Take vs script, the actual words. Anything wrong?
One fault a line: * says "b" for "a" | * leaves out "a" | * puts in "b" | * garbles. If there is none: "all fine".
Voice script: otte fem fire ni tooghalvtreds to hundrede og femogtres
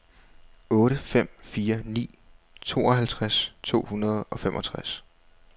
all fine